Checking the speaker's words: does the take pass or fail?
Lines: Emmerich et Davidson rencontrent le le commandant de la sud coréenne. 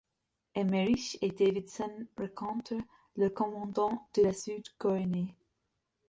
fail